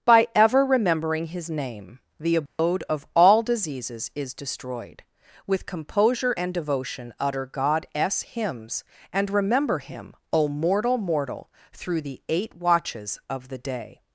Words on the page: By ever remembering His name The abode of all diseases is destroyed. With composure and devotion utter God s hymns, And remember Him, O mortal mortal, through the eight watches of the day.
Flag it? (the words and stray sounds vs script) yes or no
yes